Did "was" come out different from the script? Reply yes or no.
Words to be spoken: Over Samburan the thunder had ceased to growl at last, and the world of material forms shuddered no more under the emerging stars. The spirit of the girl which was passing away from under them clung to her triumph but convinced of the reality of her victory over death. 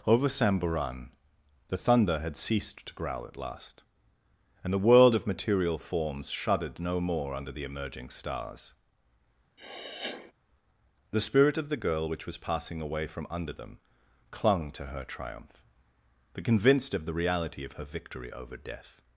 no